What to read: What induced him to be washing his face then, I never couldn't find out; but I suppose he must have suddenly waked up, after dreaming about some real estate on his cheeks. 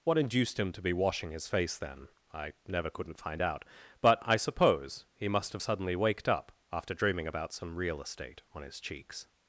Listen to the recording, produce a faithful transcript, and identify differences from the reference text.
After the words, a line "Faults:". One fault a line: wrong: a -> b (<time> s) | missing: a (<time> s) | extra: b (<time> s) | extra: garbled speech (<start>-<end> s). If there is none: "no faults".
What induced him to be washing his face then, I never couldn't find out; but I suppose he must have suddenly waked up, after dreaming about some real estate on his cheeks.
Faults:
no faults